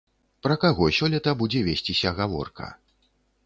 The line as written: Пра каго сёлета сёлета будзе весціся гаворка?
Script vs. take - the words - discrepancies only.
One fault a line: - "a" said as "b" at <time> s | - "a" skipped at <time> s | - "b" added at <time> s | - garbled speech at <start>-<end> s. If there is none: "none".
- "сёлета" skipped at 1.4 s